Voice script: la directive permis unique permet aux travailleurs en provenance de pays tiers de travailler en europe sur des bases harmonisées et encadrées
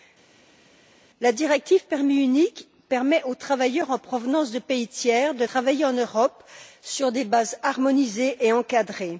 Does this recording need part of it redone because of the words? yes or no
no